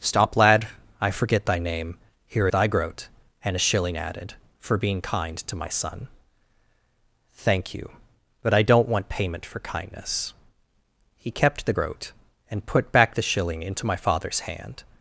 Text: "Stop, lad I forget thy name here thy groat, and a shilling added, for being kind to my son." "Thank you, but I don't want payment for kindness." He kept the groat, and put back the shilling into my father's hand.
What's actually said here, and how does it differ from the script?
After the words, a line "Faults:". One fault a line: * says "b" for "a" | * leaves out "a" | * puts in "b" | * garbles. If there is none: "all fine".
"Stop, lad I forget thy name here thy groat, and a shilling added, for being kind to my son." "Thank you, but I don't want payment for kindness." He kept the groat, and put back the shilling into my father's hand.
Faults:
all fine